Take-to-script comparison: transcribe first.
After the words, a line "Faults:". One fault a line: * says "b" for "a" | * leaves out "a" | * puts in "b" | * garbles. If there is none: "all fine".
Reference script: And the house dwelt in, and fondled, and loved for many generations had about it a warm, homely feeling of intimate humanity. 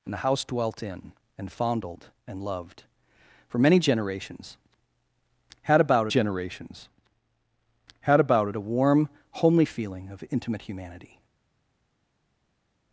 And the house dwelt in, and fondled, and loved for many generations had about generations had about it a warm, homely feeling of intimate humanity.
Faults:
* puts in "generations had about"